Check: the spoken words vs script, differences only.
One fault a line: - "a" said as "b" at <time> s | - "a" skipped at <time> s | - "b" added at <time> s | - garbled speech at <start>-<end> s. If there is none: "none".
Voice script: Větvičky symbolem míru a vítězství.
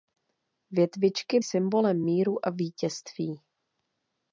none